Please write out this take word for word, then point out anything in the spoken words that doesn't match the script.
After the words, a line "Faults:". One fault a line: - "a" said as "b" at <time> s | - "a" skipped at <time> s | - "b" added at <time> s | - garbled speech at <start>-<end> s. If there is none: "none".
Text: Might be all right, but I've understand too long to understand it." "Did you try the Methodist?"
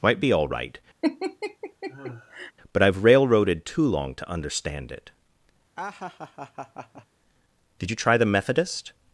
Might be all right, but I've railroaded too long to understand it." "Did you try the Methodist?"
Faults:
- "understand" said as "railroaded" at 3.0 s